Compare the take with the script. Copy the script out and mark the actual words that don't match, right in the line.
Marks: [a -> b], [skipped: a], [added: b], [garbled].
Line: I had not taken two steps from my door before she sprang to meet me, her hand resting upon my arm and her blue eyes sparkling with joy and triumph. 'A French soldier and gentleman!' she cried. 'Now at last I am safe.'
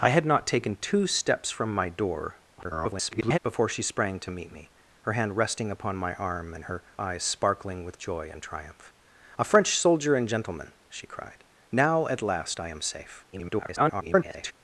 I had not taken two steps from my door [garbled] before she sprang to meet me, her hand resting upon my arm and her [skipped: blue] eyes sparkling with joy and triumph. 'A French soldier and gentleman!' she cried. 'Now at last I am safe.' [garbled]